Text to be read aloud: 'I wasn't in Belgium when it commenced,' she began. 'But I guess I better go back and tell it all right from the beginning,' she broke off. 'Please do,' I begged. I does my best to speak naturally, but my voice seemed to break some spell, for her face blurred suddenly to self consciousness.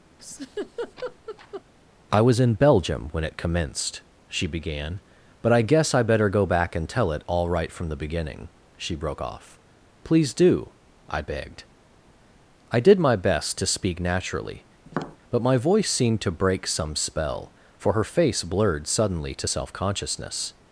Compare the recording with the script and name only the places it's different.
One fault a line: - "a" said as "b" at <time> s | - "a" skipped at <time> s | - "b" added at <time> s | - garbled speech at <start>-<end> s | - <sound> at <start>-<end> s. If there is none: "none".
- laugh at 0.2-1.6 s
- "wasn't" said as "was" at 2.2 s
- "does" said as "did" at 12.8 s
- tap at 14.8-15.2 s